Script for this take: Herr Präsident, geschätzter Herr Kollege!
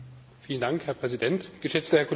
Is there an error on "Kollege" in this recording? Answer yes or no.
no